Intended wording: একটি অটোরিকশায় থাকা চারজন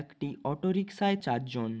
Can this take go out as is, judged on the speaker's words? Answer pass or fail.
fail